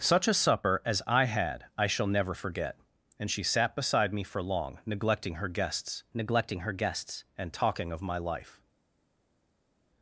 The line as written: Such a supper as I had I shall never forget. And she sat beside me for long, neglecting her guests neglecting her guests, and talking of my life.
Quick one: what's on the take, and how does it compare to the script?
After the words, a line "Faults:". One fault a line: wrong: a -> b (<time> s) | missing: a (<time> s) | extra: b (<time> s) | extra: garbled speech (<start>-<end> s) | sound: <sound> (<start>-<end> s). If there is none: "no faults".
Such a supper as I had I shall never forget. And she sat beside me for long, neglecting her guests neglecting her guests, and talking of my life.
Faults:
no faults